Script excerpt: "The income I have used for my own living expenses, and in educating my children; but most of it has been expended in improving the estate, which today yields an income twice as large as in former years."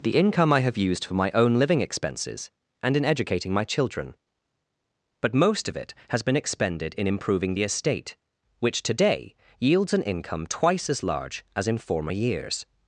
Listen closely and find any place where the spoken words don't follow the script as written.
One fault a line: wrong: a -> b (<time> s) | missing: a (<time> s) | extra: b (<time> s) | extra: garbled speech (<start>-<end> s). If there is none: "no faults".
no faults